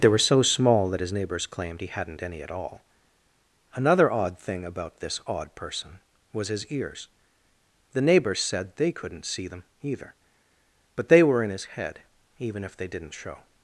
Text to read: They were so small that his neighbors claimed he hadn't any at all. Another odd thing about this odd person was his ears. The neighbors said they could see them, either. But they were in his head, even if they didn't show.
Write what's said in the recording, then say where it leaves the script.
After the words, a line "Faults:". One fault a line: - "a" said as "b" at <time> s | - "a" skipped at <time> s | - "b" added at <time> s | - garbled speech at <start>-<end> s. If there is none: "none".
They were so small that his neighbors claimed he hadn't any at all. Another odd thing about this odd person was his ears. The neighbors said they couldn't see them, either. But they were in his head, even if they didn't show.
Faults:
- "could" said as "couldn't" at 8.9 s